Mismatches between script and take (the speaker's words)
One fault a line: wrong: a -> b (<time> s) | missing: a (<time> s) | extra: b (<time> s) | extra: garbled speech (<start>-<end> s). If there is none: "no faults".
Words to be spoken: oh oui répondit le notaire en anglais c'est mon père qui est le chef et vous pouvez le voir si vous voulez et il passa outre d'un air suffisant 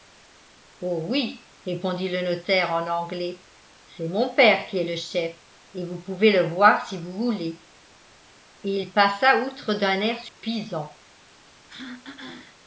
no faults